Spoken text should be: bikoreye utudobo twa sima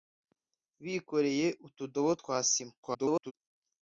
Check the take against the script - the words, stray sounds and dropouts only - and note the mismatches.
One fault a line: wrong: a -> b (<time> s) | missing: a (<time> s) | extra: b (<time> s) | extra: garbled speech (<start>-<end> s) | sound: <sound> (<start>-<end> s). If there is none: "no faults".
extra: garbled speech (2.8-3.3 s)